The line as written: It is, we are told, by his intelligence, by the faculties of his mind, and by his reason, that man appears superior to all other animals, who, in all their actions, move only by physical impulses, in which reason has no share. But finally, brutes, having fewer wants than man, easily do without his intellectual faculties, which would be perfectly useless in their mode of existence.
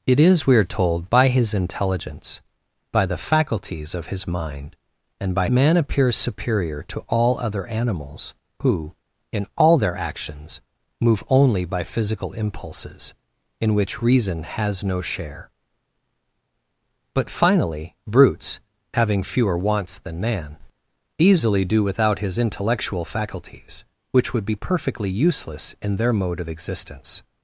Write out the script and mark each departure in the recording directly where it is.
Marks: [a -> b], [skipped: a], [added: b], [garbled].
It is, we are told, by his intelligence, by the faculties of his mind, and by [skipped: his reason, that] man appears superior to all other animals, who, in all their actions, move only by physical impulses, in which reason has no share. But finally, brutes, having fewer wants than man, easily do without his intellectual faculties, which would be perfectly useless in their mode of existence.